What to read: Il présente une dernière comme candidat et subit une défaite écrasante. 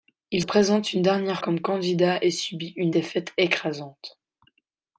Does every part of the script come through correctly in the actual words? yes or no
yes